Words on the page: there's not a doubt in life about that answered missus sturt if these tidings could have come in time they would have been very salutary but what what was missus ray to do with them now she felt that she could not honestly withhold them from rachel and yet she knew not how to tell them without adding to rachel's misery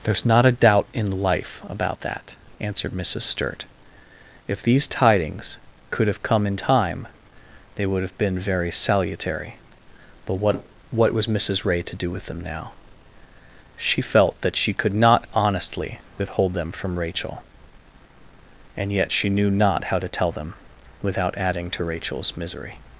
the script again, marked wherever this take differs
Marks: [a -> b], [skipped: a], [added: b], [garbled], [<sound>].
there's not a doubt in life about that answered missus sturt if these tidings could have come in time they would have been very salutary but what what was missus ray to do with them now she felt that she could not honestly withhold them from rachel and yet she knew not how to tell them without adding to rachel's misery